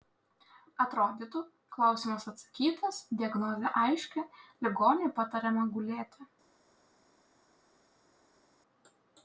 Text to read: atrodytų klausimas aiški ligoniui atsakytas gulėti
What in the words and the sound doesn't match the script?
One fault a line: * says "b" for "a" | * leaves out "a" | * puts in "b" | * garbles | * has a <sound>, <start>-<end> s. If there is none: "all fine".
* puts in "atsakytas diagnozė"
* says "patariama" for "atsakytas"